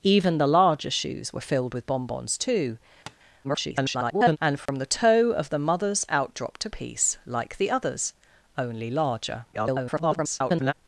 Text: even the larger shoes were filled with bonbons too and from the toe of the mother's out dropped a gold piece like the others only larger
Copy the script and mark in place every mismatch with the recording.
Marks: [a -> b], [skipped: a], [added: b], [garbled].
even the larger shoes were filled with bonbons too [garbled] and from the toe of the mother's out dropped a [skipped: gold] piece like the others only larger [garbled]